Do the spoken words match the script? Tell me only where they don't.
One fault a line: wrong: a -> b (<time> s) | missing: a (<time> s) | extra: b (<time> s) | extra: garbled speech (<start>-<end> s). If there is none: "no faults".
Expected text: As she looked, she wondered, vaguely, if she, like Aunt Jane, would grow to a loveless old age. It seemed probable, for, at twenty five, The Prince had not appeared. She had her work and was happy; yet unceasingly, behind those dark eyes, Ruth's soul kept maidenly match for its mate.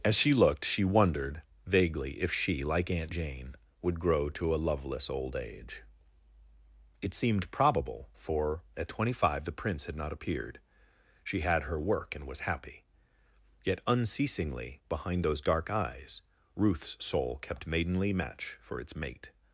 no faults